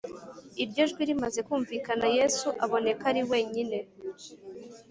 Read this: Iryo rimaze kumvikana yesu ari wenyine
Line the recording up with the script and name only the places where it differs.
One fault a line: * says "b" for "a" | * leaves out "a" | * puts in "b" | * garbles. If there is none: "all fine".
* puts in "jwi"
* puts in "aboneka"